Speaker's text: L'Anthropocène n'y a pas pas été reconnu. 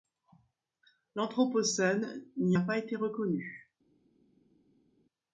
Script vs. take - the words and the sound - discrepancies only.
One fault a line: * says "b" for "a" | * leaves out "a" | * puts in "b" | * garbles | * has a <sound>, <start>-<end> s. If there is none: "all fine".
* leaves out "pas"